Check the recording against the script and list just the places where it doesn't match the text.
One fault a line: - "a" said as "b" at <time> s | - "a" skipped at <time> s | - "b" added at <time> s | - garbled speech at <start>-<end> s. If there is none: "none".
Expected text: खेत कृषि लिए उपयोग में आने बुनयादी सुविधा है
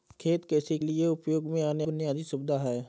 none